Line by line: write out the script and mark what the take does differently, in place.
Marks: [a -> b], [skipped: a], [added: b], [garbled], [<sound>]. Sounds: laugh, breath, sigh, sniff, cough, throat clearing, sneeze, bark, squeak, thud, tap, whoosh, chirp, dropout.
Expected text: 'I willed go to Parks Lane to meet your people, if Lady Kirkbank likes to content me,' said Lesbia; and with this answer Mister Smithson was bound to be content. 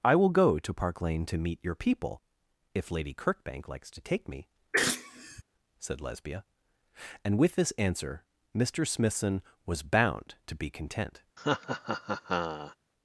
'I [willed -> will] go to [Parks -> Park] Lane to meet your people, if Lady Kirkbank likes to [content -> take] me,' [sneeze] said Lesbia; and with this answer Mister Smithson was bound to be content. [laugh]